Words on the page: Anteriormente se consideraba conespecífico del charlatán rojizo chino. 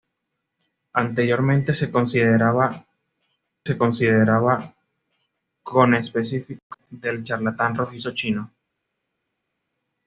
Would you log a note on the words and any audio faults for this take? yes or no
yes